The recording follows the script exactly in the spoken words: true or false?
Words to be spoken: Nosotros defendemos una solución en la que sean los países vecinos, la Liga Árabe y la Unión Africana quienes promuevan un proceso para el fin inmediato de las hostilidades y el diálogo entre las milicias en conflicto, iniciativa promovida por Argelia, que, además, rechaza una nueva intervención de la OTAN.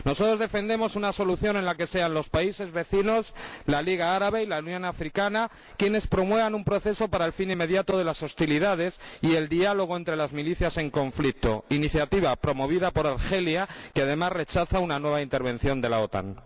true